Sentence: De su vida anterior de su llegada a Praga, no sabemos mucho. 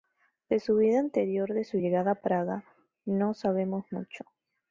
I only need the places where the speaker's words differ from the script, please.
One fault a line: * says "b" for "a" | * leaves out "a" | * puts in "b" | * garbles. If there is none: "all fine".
all fine